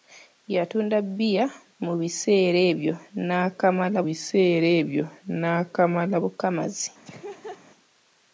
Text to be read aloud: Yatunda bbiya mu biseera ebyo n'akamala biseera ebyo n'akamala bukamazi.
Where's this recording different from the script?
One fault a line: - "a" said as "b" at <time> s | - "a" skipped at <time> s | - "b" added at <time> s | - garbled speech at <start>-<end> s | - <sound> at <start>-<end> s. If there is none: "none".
- laugh at 7.0-7.6 s